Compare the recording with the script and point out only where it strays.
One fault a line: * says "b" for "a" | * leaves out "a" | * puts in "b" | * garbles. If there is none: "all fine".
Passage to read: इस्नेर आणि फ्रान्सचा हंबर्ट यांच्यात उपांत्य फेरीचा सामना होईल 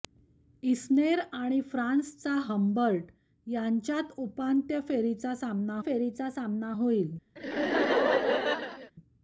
* puts in "फेरीचा सामना"